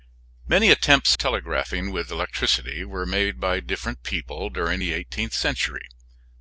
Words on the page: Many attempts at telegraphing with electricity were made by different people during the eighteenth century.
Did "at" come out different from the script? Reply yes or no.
yes